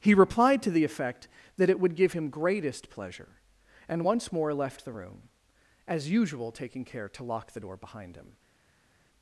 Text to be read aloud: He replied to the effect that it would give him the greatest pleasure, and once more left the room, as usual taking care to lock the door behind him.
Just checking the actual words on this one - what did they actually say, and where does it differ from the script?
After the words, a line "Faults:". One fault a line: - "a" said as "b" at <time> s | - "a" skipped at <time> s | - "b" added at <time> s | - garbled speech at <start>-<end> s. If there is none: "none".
He replied to the effect that it would give him greatest pleasure, and once more left the room, as usual taking care to lock the door behind him.
Faults:
- "the" skipped at 2.3 s